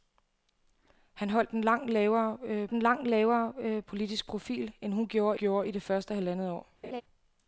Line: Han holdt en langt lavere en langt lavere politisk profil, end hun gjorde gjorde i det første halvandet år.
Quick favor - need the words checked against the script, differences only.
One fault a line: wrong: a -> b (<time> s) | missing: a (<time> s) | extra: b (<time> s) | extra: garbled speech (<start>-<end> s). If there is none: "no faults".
no faults